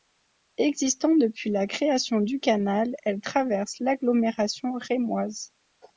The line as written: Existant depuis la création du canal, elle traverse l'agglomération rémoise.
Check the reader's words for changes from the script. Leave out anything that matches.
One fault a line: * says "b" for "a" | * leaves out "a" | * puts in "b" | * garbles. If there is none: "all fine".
all fine